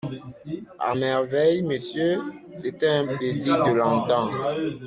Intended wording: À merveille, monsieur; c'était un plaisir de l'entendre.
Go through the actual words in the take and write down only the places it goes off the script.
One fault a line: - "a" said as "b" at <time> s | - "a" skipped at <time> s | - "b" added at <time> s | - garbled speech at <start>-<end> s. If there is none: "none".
none